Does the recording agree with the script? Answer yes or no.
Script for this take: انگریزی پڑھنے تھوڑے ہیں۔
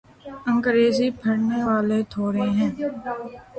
no